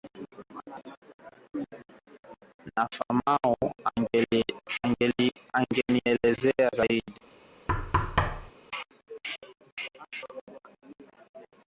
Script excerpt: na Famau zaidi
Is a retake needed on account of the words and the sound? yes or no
yes